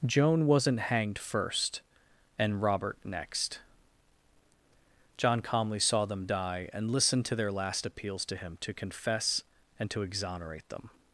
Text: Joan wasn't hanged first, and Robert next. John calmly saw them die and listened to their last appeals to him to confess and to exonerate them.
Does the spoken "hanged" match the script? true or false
true